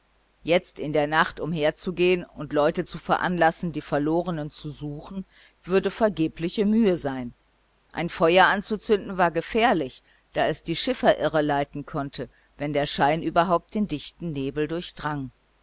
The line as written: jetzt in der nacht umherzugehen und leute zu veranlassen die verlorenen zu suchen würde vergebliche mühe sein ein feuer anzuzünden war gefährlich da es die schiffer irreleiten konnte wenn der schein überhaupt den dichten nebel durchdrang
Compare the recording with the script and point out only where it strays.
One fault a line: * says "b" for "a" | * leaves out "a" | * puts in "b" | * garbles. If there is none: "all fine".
all fine